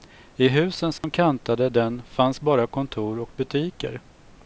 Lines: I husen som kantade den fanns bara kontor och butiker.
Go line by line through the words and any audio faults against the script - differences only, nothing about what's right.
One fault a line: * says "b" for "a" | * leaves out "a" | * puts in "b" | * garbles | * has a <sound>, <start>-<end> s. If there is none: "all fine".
* has a dropout, 1.0-1.0 s